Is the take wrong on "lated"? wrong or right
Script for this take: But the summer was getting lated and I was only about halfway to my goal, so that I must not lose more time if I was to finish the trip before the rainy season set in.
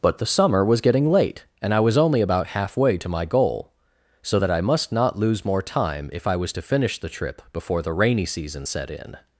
wrong